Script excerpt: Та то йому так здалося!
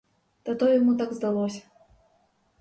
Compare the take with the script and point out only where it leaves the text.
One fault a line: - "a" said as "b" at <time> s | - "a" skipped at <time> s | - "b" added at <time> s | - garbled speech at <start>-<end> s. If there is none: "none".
none